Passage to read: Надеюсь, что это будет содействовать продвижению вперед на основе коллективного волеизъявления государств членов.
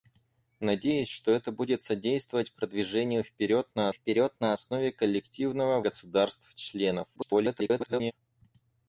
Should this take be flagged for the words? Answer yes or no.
yes